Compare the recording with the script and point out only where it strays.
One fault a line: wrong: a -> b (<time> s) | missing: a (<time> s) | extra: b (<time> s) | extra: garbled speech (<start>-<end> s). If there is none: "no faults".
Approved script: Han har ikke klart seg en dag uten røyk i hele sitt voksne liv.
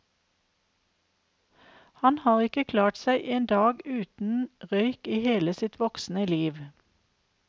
no faults